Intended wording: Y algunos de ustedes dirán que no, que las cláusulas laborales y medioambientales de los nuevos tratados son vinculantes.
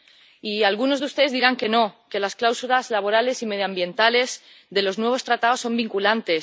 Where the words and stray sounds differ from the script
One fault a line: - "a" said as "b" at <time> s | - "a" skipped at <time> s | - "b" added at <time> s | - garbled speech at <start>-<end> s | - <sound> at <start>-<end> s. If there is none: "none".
none